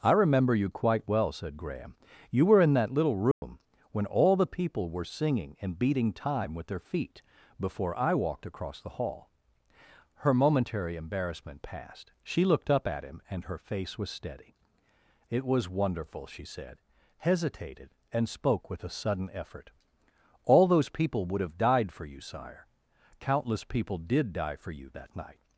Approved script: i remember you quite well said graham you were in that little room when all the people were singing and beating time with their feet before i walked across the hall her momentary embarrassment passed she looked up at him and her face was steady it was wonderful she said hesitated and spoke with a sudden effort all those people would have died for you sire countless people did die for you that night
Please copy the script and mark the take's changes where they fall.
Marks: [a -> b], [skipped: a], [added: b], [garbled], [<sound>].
i remember you quite well said graham you were in that little room [dropout] when all the people were singing and beating time with their feet before i walked across the hall her momentary embarrassment passed she looked up at him and her face was steady it was wonderful she said hesitated and spoke with a sudden effort all those people would have died for you sire countless people did die for you that night